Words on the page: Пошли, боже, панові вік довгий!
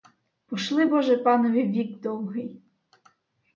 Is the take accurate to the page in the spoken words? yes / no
yes